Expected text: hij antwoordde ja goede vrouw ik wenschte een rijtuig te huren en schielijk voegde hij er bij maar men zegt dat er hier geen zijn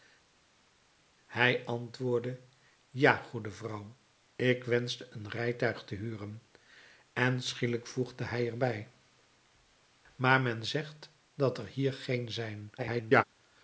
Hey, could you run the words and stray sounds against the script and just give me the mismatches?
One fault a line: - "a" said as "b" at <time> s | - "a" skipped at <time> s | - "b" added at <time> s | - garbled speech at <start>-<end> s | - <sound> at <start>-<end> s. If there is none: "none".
- garbled speech at 12.8-13.2 s